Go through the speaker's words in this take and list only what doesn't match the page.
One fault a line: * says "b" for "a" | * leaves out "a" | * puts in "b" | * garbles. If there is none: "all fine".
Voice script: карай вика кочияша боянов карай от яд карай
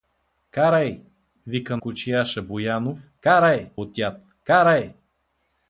all fine